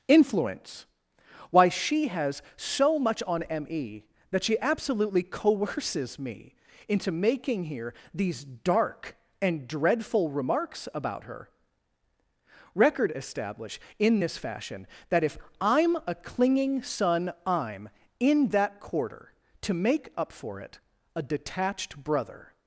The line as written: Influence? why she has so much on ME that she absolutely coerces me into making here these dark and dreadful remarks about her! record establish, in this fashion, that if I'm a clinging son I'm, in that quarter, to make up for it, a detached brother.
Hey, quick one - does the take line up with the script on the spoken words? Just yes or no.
yes